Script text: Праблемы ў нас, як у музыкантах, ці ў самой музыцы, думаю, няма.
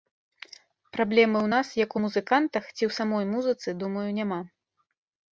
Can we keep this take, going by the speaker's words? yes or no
yes